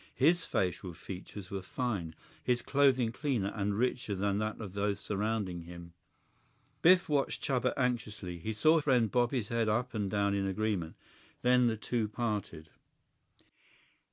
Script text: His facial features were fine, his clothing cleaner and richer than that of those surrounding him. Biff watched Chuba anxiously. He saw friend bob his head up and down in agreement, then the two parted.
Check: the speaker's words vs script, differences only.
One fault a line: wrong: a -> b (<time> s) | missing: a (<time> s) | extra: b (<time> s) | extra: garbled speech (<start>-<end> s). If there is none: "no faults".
no faults